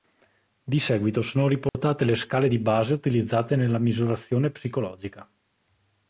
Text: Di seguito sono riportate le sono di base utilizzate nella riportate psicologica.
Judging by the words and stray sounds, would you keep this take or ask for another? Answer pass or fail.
fail